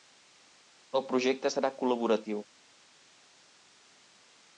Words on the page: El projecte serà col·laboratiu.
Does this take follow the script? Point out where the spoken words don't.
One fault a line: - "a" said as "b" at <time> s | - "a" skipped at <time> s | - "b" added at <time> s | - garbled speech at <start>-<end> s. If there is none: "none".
none